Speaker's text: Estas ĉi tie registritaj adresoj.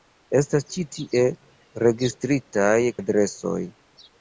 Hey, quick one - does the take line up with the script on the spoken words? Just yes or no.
yes